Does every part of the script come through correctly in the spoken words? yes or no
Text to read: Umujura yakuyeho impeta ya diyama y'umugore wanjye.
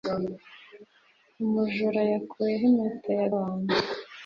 no